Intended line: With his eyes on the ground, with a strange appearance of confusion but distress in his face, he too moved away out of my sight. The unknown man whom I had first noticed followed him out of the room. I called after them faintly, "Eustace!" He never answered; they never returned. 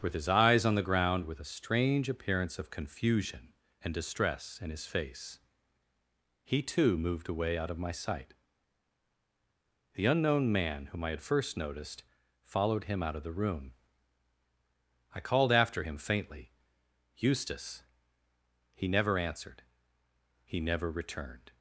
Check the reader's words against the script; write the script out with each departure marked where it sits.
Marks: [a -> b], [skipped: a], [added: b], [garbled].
With his eyes on the ground, with a strange appearance of confusion [but -> and] distress in his face, he too moved away out of my sight. The unknown man whom I had first noticed followed him out of the room. I called after [them -> him] faintly, "Eustace!" He never answered; [they -> he] never returned.